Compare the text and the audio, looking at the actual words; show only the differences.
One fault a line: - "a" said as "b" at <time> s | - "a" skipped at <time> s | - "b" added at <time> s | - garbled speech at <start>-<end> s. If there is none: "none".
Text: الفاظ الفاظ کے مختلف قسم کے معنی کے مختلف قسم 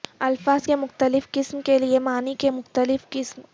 - "الفاظ" skipped at 0.7 s
- "لئے" added at 1.8 s